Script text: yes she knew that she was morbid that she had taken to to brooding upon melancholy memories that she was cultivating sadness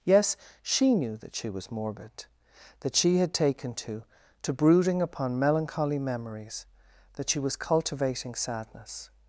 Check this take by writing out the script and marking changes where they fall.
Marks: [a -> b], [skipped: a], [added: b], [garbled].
yes she knew that she was morbid that she had taken to to brooding upon melancholy memories that she was cultivating sadness